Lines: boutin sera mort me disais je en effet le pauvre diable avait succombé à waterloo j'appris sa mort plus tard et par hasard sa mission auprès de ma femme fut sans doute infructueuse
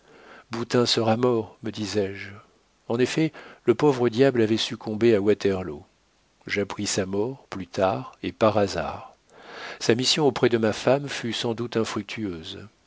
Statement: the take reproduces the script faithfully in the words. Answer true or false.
true